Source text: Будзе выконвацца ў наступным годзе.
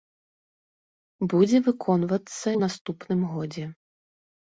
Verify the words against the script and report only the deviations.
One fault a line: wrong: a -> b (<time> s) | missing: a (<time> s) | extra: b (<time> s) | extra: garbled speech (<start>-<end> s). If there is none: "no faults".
no faults